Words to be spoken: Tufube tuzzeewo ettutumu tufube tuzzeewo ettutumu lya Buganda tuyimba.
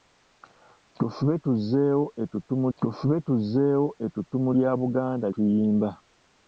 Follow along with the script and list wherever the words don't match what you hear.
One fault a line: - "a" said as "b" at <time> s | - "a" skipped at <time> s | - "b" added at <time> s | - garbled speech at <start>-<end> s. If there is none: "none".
none